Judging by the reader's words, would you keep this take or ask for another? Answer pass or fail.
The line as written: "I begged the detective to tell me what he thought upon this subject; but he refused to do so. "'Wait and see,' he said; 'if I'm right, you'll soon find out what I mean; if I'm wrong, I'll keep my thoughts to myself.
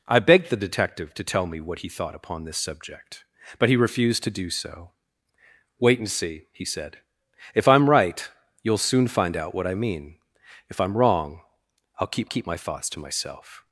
fail